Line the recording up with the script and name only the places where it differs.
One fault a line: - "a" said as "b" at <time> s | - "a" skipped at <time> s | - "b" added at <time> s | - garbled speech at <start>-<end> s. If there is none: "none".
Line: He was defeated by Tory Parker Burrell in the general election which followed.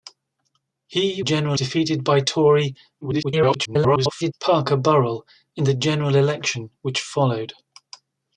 - "was" said as "general" at 1.2 s
- garbled speech at 3.0-4.3 s